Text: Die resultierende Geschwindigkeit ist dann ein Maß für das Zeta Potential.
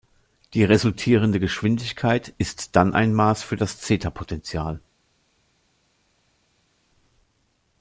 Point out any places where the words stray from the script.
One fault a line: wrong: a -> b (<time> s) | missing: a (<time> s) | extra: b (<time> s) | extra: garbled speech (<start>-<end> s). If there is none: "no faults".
no faults